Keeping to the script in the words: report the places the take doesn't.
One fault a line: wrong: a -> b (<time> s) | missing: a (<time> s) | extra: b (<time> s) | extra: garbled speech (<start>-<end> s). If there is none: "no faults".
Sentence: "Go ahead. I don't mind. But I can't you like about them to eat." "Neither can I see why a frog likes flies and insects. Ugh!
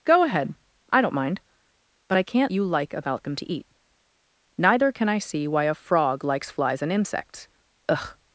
no faults